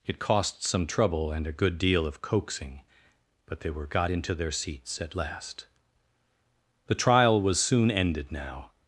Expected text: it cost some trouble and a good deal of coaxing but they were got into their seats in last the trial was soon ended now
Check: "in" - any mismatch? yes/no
yes